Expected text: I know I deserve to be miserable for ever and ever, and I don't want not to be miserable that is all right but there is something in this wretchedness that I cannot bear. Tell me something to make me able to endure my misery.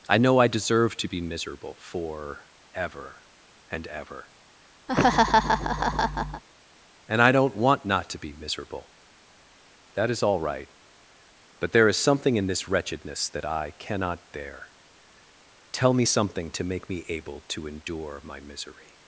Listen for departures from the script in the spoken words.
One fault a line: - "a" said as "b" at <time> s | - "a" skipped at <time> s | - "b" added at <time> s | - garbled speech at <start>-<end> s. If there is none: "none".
none